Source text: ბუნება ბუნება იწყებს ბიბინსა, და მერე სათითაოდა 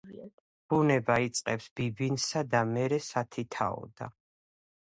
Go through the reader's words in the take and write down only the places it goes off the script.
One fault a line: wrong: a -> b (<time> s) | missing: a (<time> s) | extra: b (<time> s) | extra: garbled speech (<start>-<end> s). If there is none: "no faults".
missing: ბუნება (1.2 s)